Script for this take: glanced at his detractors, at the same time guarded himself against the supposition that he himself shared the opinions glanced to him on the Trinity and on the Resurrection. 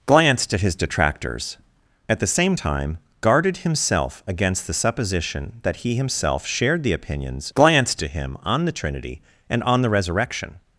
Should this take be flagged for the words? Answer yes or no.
no